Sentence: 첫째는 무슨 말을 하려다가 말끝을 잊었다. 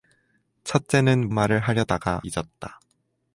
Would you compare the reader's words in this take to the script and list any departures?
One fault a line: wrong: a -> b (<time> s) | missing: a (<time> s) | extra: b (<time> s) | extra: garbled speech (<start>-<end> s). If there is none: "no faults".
missing: 무슨 (1.3 s)
missing: 말끝을 (2.2 s)